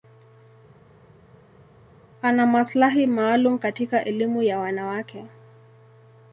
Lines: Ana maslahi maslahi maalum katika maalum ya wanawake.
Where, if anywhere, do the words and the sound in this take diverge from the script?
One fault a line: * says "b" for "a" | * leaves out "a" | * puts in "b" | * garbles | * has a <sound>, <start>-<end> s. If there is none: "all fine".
* leaves out "maslahi"
* says "elimu" for "maalum"